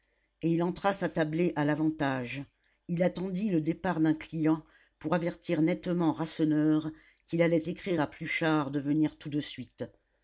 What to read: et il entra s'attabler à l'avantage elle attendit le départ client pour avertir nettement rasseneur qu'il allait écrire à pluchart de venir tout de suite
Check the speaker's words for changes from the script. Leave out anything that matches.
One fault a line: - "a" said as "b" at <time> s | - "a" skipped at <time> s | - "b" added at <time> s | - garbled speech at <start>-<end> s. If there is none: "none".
- "elle" said as "il" at 2.9 s
- "d'un" added at 4.0 s